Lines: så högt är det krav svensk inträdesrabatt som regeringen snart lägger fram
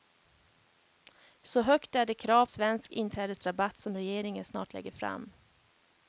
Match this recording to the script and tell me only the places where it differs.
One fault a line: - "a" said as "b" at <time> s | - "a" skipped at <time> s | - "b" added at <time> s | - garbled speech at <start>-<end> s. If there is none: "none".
none